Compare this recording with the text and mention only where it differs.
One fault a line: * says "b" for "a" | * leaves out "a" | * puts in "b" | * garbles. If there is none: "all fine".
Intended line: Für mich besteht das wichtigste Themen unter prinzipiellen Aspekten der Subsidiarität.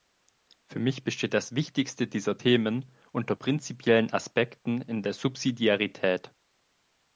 * puts in "dieser"
* puts in "in"